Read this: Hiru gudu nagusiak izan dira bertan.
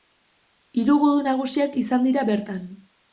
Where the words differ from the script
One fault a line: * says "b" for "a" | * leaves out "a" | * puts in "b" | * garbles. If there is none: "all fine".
all fine